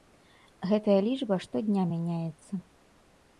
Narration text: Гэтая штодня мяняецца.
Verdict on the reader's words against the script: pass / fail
fail